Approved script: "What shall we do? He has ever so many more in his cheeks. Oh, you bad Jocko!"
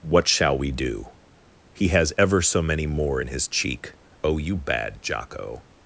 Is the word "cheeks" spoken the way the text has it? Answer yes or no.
no